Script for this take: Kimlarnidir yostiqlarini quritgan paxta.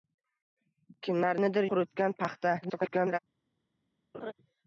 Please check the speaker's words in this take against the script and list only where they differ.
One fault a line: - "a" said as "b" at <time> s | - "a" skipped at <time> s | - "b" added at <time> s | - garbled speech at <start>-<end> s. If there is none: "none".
- "yostiqlarini" skipped at 1.7 s
- garbled speech at 2.6-3.2 s